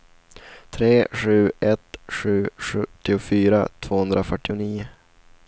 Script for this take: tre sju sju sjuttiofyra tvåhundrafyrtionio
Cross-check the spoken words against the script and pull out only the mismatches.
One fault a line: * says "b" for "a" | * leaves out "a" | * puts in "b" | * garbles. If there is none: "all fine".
* puts in "ett"